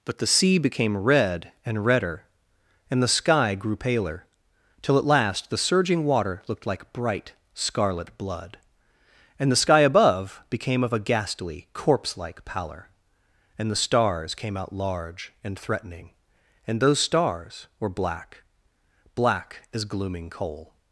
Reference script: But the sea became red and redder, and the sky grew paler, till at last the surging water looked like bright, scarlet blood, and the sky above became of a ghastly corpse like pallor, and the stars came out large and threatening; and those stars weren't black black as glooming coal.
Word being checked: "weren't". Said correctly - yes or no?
no